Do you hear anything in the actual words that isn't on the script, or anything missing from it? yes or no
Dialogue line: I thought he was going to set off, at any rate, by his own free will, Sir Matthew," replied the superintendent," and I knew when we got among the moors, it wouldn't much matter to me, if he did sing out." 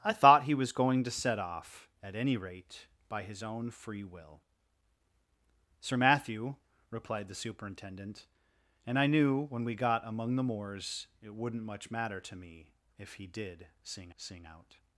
yes